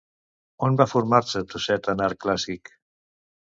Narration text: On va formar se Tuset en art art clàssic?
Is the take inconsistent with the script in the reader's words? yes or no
yes